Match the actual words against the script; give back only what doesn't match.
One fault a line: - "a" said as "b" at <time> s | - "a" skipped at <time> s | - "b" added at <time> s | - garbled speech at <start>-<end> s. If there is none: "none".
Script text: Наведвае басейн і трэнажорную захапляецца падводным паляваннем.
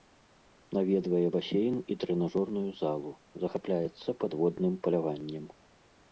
- "залу" added at 2.8 s